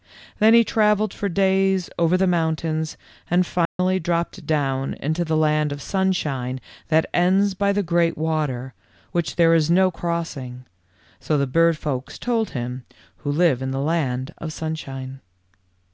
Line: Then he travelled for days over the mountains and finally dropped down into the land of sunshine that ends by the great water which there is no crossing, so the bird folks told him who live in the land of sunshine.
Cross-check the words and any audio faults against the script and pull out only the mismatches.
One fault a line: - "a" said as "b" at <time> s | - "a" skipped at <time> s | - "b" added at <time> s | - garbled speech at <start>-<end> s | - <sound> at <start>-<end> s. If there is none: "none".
- dropout at 3.7-3.8 s